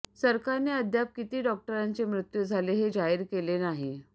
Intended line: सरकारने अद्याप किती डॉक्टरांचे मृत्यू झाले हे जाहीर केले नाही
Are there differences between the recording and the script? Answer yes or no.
no